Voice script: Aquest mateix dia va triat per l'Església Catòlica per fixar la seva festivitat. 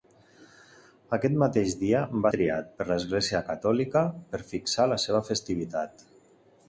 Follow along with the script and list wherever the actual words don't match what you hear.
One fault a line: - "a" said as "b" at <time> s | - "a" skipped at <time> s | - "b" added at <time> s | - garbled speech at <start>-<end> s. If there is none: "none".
none